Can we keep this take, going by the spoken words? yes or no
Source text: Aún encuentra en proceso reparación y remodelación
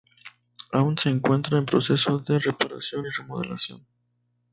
no